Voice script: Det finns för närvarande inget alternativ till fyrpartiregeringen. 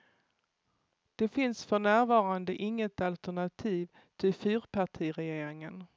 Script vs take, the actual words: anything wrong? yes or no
no